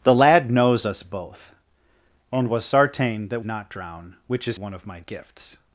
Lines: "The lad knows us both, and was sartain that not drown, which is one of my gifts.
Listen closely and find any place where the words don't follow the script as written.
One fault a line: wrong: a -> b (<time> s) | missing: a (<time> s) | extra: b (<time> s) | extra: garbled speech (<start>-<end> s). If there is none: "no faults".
no faults